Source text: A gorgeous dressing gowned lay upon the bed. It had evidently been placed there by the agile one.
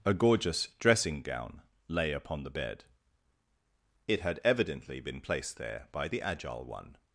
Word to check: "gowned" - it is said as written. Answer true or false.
false